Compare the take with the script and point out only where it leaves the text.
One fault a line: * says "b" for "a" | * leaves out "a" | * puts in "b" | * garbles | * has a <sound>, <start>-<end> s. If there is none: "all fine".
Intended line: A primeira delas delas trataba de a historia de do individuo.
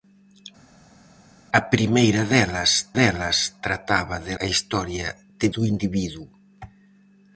all fine